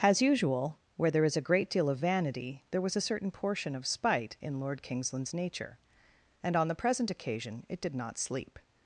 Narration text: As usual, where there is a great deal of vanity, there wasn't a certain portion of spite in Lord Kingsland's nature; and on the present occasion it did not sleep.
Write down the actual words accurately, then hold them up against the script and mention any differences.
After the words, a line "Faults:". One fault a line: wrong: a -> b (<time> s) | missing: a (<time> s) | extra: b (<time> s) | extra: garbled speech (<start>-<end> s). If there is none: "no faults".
As usual, where there is a great deal of vanity, there was a certain portion of spite in Lord Kingsland's nature; and on the present occasion it did not sleep.
Faults:
wrong: wasn't -> was (2.8 s)